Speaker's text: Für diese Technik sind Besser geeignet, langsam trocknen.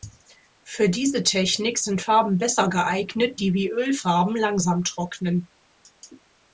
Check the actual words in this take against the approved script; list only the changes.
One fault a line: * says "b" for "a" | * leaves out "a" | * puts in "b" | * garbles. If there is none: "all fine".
* puts in "Farben"
* puts in "die wie Ölfarben"